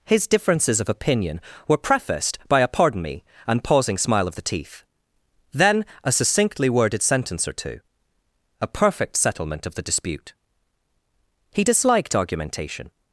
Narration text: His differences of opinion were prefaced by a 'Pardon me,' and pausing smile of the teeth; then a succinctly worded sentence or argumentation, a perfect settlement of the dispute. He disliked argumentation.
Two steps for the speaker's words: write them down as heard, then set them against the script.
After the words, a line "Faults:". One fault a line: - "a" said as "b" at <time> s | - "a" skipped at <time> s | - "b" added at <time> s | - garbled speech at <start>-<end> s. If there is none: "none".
His differences of opinion were prefaced by a 'Pardon me,' and pausing smile of the teeth; then a succinctly worded sentence or two, a perfect settlement of the dispute. He disliked argumentation.
Faults:
- "argumentation" said as "two" at 7.5 s